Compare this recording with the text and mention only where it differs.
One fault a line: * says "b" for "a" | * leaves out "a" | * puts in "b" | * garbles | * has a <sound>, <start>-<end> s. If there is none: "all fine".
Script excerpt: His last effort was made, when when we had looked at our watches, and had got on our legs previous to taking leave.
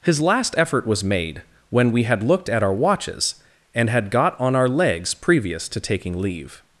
* leaves out "when"